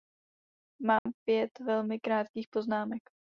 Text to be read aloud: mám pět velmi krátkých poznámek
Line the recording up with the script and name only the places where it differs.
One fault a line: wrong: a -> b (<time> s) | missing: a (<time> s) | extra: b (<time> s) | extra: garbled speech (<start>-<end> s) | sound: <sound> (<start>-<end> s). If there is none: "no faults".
sound: dropout (1.0-1.1 s)